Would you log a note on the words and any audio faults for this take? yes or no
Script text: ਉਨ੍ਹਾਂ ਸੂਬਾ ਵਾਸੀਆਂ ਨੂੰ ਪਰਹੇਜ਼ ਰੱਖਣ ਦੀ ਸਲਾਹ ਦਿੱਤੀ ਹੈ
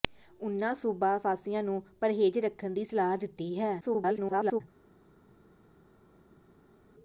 yes